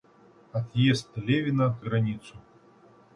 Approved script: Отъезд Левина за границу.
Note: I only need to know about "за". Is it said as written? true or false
false